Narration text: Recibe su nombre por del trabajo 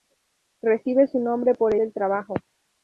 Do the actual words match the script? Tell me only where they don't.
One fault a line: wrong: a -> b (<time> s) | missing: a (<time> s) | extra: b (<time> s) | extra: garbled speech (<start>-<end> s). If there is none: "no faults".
no faults